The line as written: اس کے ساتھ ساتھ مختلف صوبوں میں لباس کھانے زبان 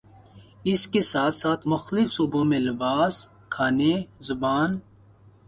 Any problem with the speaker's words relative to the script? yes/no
no